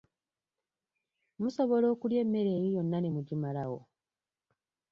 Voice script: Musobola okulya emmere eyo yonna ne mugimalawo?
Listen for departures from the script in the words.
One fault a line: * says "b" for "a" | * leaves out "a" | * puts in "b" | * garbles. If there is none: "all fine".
all fine